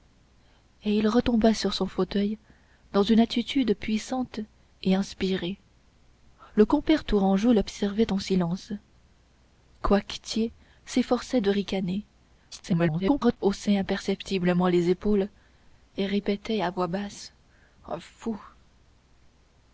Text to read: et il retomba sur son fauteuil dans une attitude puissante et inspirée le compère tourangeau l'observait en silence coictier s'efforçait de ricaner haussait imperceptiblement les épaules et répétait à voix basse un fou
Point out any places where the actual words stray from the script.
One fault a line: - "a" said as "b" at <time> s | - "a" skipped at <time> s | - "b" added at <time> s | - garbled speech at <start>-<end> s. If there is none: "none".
- garbled speech at 12.5-13.4 s